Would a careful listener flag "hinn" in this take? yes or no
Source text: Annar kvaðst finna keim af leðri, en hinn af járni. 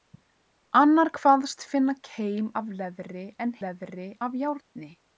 yes